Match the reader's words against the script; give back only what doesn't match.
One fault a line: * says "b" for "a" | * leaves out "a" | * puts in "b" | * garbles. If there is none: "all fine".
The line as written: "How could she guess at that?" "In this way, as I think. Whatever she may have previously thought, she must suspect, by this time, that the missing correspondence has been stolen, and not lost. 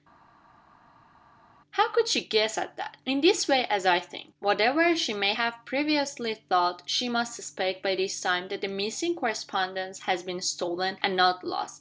all fine